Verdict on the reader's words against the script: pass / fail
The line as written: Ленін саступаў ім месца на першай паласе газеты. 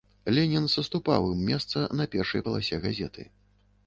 pass